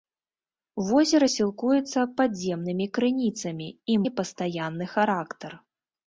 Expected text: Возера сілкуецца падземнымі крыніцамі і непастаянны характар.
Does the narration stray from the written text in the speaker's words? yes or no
no